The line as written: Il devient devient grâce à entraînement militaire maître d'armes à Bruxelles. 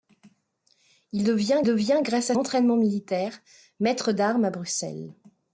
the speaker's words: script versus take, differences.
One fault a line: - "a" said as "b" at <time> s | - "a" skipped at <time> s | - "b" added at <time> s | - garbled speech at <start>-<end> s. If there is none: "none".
none